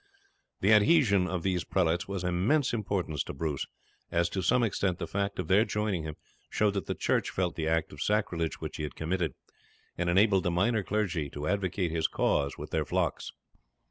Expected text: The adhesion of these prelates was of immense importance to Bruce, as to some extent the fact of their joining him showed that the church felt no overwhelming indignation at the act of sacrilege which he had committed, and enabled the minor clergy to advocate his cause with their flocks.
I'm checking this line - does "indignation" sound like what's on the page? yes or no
no